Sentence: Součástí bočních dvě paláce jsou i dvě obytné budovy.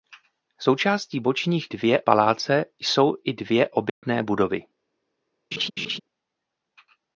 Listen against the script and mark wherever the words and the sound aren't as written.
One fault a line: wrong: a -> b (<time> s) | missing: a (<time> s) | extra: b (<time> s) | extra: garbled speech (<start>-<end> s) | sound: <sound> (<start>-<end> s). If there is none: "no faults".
sound: dropout (3.9-4.0 s)
sound: laugh (5.5-6.0 s)